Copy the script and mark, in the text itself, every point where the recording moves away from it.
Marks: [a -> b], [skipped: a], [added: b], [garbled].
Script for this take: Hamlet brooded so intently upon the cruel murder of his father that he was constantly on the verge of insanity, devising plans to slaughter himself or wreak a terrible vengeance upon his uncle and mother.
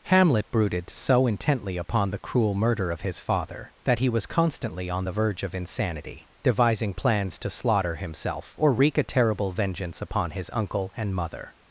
Hamlet brooded so intently upon the cruel murder of his father that he was constantly on the verge of insanity, devising plans to slaughter himself or wreak a terrible vengeance upon his uncle and mother.